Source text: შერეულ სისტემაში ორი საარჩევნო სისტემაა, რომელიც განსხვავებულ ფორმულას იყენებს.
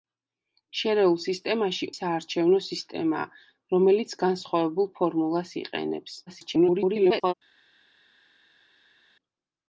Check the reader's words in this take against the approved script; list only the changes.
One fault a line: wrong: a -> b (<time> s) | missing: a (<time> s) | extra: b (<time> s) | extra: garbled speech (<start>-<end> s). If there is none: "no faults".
missing: ორი (1.9 s)
extra: garbled speech (6.3-7.3 s)